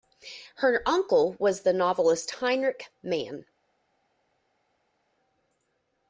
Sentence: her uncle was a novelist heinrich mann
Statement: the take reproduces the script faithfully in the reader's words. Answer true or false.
false